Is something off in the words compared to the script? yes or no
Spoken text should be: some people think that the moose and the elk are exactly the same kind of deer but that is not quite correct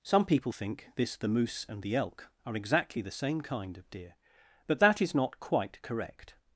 yes